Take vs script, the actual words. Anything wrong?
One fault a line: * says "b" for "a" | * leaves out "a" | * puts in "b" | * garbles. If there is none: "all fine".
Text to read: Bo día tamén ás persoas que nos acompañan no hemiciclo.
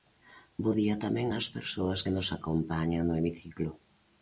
all fine